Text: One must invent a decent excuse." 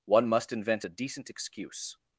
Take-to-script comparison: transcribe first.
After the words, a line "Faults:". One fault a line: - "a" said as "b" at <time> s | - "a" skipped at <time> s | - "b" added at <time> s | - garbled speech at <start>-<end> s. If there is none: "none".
One must invent a decent excuse."
Faults:
none